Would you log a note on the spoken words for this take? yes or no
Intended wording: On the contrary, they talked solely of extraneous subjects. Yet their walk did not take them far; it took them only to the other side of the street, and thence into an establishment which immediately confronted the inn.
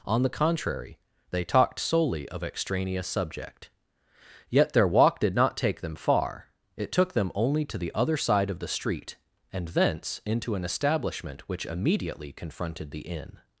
yes